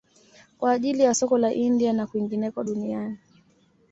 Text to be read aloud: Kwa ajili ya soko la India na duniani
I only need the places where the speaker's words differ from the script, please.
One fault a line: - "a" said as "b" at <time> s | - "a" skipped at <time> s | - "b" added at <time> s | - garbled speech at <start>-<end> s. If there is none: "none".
- "kwingineko" added at 2.1 s